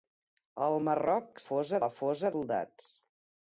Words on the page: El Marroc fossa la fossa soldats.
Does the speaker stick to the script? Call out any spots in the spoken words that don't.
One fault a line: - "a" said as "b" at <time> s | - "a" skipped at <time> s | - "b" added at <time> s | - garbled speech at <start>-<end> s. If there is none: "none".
none